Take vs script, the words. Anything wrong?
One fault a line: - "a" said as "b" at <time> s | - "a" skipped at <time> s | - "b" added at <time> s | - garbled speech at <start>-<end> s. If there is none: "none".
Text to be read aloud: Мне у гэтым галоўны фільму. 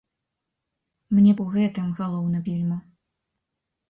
none